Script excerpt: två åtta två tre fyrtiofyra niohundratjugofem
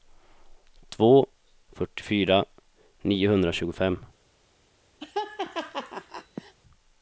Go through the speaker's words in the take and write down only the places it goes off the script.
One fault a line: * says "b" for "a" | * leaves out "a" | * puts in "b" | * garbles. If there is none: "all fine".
* leaves out "åtta två tre"